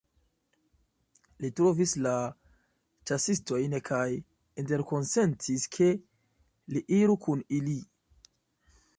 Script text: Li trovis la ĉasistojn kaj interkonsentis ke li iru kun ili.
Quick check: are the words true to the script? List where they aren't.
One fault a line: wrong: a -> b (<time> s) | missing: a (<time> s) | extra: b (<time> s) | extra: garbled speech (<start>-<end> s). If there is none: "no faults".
no faults